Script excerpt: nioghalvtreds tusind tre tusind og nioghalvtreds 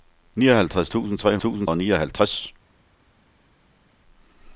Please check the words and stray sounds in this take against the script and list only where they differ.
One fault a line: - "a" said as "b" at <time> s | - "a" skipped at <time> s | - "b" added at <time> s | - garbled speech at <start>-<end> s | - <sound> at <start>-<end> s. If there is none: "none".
none